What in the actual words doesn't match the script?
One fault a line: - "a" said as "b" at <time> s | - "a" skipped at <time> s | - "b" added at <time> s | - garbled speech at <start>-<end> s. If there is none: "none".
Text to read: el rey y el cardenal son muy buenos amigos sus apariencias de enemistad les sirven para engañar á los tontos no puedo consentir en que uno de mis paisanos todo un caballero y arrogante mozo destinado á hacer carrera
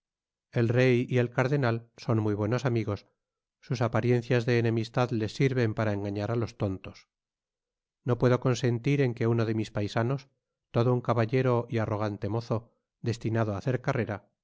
none